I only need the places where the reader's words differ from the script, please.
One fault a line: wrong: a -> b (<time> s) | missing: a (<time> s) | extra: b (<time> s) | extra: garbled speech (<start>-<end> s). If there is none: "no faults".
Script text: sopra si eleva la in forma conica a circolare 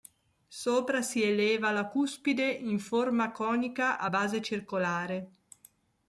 extra: cuspide (1.9 s)
extra: base (4.1 s)